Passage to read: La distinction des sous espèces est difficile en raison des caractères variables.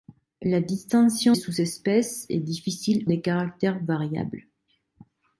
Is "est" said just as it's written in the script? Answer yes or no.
yes